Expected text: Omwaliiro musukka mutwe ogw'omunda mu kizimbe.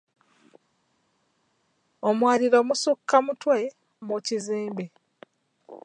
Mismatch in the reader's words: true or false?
true